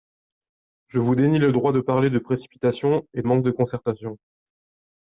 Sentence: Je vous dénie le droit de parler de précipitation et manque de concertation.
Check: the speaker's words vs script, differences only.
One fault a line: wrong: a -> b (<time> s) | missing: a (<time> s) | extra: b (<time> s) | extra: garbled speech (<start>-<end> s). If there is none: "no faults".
no faults